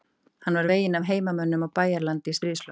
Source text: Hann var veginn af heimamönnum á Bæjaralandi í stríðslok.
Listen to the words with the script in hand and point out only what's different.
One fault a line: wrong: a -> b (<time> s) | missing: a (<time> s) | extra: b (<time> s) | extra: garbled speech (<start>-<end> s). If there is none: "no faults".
no faults